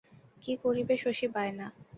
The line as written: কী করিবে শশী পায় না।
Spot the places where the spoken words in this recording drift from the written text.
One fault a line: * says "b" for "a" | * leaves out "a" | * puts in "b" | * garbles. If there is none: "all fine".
all fine